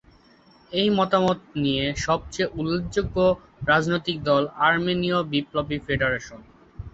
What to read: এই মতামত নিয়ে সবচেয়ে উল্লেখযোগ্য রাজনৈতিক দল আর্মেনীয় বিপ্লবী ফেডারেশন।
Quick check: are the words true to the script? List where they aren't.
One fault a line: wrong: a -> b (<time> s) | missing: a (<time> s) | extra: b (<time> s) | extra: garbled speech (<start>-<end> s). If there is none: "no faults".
no faults